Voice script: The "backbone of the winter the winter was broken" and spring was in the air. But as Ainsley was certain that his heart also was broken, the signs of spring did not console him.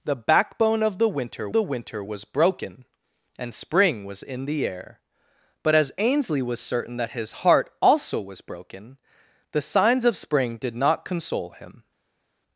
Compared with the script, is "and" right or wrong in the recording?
right